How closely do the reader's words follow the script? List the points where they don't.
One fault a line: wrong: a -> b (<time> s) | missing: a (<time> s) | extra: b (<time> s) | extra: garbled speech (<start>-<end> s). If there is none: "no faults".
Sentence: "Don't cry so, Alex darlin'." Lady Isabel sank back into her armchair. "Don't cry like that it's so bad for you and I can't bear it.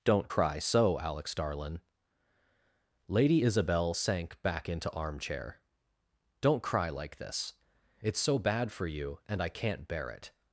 missing: her (4.9 s)
wrong: that -> this (7.2 s)